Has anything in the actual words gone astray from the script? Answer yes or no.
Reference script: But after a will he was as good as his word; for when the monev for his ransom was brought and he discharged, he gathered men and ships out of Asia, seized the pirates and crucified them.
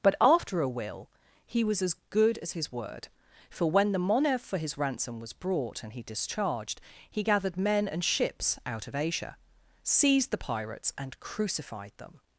no